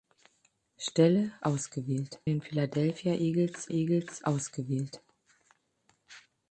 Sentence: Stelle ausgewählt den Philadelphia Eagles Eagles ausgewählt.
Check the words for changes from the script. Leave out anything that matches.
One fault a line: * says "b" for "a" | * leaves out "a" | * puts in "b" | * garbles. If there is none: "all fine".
all fine